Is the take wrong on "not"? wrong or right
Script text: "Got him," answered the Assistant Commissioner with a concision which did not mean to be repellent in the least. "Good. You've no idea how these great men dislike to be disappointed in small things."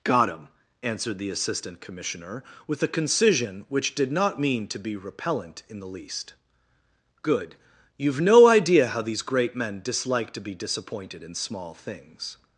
right